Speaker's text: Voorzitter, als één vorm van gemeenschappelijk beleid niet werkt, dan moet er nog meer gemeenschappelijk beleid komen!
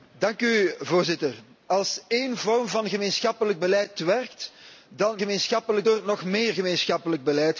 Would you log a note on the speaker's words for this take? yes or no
yes